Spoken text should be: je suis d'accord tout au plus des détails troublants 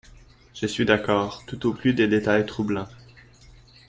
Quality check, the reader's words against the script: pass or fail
pass